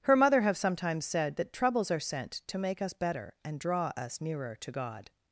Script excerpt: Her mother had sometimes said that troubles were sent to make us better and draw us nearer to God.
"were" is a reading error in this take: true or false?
true